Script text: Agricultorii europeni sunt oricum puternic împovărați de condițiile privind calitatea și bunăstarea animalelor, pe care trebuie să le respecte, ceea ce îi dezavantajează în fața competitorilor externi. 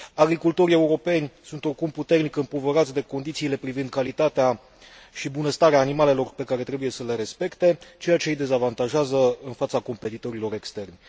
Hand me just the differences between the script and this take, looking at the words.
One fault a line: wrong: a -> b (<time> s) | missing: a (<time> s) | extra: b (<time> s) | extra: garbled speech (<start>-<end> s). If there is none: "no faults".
no faults